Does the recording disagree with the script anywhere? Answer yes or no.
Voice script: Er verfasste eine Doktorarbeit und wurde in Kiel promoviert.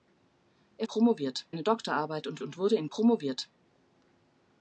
yes